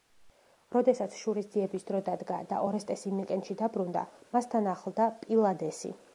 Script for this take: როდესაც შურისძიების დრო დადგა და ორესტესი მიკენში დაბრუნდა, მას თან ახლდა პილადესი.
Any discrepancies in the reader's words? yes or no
no